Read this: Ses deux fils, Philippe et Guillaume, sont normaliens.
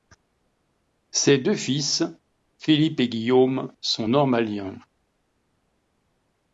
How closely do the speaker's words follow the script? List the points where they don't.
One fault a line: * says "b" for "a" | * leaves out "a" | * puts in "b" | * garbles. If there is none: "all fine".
all fine